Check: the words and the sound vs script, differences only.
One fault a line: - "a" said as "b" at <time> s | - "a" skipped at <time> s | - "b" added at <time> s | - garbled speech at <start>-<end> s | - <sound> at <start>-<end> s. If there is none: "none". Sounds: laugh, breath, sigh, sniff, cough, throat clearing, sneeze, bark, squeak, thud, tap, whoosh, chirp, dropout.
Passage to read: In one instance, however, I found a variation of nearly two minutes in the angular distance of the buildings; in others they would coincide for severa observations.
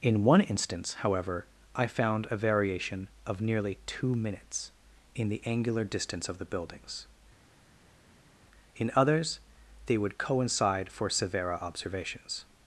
none